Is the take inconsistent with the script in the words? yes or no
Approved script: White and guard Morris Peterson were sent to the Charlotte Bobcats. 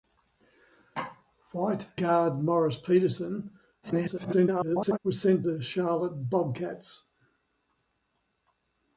yes